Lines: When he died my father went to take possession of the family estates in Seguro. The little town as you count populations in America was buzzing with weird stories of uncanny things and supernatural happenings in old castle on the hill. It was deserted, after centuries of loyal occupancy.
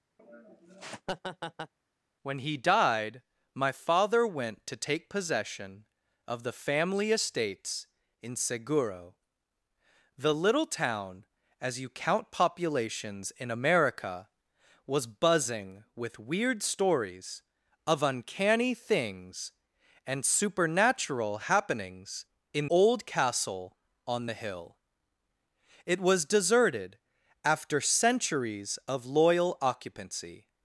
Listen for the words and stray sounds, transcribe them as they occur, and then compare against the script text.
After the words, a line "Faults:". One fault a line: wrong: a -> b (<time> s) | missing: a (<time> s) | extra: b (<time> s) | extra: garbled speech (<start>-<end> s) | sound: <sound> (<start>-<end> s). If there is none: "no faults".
When he died my father went to take possession of the family estates in Seguro. The little town as you count populations in America was buzzing with weird stories of uncanny things and supernatural happenings in old castle on the hill. It was deserted, after centuries of loyal occupancy.
Faults:
sound: laugh (0.2-1.7 s)